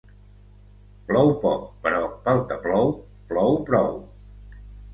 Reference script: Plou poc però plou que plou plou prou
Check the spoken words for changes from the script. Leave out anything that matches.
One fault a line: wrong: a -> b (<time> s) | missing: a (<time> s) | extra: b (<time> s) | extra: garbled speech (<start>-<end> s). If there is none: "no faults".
wrong: plou -> pel (2.2 s)